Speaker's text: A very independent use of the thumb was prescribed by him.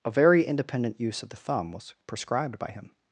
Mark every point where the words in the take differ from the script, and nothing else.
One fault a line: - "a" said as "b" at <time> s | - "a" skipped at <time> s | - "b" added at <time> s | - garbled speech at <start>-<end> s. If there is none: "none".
none